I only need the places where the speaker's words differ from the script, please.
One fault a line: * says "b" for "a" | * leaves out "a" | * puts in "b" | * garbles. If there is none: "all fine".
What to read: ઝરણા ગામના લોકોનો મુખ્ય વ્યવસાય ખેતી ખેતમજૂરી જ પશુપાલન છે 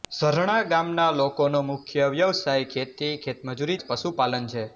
all fine